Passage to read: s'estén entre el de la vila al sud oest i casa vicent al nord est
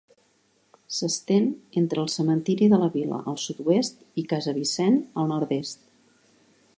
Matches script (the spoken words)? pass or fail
fail